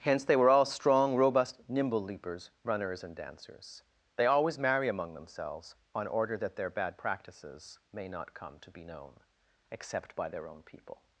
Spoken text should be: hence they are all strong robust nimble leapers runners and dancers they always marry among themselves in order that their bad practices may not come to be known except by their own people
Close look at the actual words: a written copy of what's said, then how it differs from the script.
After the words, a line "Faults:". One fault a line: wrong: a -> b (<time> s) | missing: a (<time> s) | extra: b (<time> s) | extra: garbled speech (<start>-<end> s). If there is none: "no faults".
hence they were all strong robust nimble leapers runners and dancers they always marry among themselves on order that their bad practices may not come to be known except by their own people
Faults:
wrong: are -> were (0.3 s)
wrong: in -> on (5.9 s)